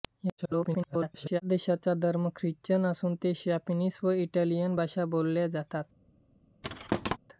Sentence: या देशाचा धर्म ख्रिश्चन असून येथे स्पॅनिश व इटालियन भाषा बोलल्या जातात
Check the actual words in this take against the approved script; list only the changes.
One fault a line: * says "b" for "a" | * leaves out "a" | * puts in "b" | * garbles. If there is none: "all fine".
* garbles